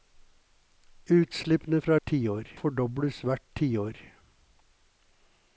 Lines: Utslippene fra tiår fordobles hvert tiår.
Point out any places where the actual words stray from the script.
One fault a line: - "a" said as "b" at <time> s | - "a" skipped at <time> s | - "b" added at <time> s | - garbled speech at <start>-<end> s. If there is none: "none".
none